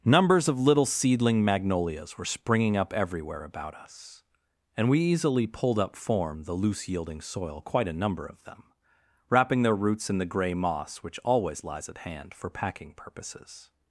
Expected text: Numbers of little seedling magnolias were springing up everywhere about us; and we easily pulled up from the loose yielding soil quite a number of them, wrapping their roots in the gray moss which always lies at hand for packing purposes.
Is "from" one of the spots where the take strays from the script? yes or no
yes